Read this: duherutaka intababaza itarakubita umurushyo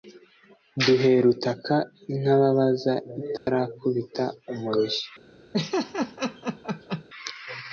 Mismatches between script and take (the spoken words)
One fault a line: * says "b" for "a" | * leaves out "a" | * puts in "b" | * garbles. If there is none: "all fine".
all fine